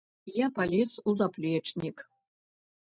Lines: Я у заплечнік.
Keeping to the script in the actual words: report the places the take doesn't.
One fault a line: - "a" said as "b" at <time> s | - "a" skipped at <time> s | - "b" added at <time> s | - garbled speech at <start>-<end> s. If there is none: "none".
- "палез" added at 0.5 s